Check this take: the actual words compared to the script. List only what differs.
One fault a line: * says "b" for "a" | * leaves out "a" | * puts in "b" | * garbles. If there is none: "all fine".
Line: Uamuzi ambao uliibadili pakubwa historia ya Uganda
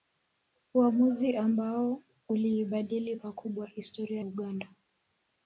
* leaves out "ya"